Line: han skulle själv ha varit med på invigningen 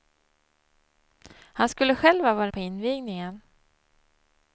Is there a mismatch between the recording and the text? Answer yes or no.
yes